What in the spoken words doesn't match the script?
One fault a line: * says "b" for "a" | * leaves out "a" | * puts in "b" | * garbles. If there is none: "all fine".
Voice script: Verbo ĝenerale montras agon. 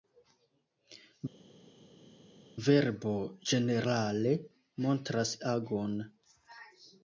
all fine